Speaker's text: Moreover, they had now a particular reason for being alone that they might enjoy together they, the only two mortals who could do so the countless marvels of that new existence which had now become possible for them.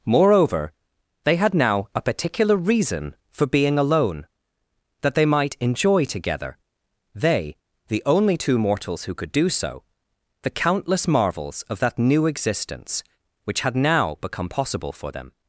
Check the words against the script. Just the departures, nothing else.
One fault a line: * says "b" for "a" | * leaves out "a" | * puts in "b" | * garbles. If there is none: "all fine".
all fine